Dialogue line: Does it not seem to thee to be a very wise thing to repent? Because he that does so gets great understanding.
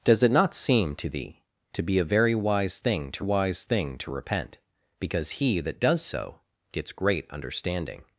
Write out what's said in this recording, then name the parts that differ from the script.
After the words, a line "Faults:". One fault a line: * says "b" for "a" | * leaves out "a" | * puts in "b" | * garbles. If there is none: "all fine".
Does it not seem to thee to be a very wise thing to wise thing to repent? Because he that does so gets great understanding.
Faults:
* puts in "wise thing to"